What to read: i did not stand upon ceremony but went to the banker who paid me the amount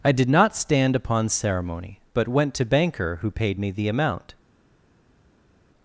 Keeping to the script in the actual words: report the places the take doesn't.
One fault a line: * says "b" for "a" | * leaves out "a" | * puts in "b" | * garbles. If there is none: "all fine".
* leaves out "the"